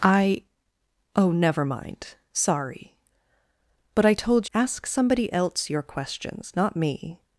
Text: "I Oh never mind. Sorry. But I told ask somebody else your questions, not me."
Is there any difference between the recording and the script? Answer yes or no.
no